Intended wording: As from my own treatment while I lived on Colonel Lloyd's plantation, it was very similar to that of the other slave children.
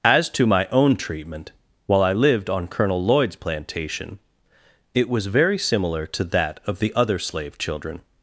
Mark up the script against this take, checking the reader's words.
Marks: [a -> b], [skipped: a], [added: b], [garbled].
As [from -> to] my own treatment while I lived on Colonel Lloyd's plantation, it was very similar to that of the other slave children.